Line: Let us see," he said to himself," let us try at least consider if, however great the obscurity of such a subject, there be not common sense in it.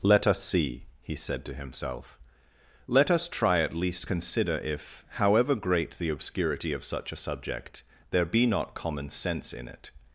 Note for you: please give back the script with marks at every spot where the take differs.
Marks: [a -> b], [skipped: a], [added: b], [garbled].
Let us see," he said to himself," let us try at least consider if, however great the obscurity of such a subject, there be not common sense in it.